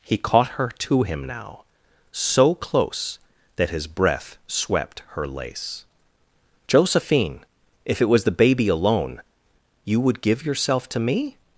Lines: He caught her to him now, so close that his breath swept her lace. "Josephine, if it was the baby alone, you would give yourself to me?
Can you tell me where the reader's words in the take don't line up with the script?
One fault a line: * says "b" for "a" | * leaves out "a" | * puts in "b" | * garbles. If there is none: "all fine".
all fine